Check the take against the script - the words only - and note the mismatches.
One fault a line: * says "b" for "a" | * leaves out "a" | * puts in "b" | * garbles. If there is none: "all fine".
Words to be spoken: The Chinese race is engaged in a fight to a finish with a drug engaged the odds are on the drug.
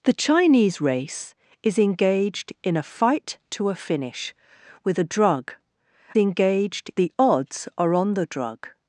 all fine